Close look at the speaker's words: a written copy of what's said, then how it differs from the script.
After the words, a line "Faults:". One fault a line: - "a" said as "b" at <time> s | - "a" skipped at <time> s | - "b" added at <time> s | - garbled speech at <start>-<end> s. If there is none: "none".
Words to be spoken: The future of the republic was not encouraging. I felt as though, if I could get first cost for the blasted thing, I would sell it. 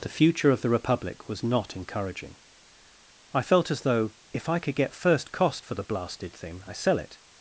The future of the republic was not encouraging. I felt as though, if I could get first cost for the blasted thing, I sell it.
Faults:
- "would" skipped at 6.7 s